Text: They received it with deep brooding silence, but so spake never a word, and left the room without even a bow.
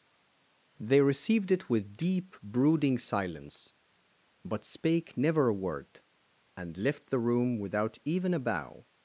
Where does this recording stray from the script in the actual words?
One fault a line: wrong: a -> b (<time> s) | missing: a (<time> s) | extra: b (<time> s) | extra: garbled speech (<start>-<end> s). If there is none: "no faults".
missing: so (4.6 s)